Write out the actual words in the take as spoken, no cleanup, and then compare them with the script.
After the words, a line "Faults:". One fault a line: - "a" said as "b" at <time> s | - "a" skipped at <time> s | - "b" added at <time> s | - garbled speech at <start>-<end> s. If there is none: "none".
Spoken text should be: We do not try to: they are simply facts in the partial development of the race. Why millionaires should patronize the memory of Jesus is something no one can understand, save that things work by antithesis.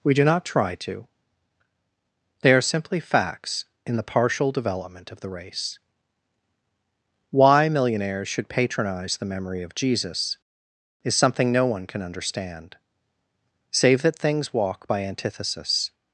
We do not try to: they are simply facts in the partial development of the race. Why millionaires should patronize the memory of Jesus is something no one can understand, save that things walk by antithesis.
Faults:
- "work" said as "walk" at 14.5 s